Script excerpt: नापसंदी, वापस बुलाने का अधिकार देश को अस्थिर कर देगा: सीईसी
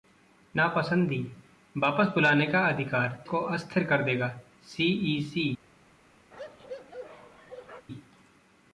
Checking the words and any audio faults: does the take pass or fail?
fail